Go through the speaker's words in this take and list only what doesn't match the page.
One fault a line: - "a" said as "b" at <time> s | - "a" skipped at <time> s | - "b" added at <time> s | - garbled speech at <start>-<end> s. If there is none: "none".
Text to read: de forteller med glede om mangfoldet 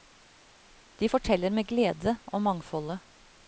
none